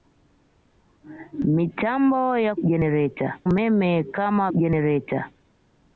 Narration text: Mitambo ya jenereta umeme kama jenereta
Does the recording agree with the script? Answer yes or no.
yes